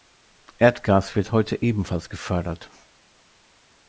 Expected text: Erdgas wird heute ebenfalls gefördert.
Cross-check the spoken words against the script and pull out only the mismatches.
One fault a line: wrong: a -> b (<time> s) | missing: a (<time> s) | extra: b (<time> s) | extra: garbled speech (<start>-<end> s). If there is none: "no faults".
no faults